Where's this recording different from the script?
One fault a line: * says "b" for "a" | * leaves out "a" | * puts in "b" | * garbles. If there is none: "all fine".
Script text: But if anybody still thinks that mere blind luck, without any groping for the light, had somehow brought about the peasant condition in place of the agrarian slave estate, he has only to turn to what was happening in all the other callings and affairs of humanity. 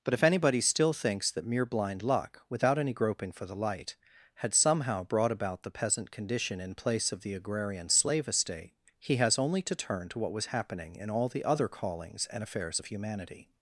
all fine